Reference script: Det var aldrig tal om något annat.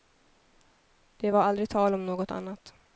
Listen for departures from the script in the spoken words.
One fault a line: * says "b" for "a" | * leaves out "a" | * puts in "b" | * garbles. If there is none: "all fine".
all fine